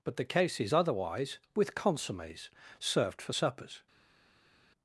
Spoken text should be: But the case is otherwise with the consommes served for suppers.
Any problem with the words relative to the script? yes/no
yes